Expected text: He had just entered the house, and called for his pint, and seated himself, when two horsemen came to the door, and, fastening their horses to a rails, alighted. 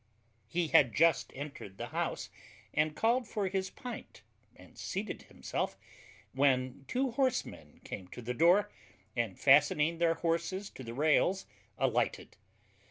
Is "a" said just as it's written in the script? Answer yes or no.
no